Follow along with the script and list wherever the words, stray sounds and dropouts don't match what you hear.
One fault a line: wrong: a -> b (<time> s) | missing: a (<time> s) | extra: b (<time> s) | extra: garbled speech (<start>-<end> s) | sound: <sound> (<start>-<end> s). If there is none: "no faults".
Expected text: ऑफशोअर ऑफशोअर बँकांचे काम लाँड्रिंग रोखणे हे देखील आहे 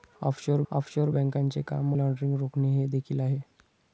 no faults